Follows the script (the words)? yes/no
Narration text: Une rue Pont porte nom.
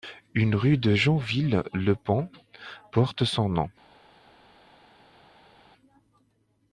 no